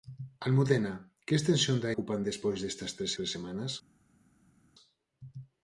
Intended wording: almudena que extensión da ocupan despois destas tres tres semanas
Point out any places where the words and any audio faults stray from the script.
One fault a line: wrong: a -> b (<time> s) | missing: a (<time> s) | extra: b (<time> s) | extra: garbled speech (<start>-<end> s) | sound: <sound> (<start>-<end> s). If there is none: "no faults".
no faults